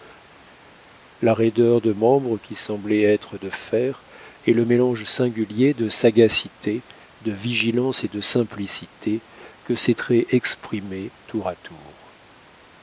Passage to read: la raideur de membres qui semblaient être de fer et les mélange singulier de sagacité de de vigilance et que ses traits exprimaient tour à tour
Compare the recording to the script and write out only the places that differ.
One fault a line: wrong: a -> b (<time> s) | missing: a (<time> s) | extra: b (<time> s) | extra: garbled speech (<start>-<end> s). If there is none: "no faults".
wrong: les -> le (4.5 s)
missing: de (7.3 s)
extra: de simplicité (8.1 s)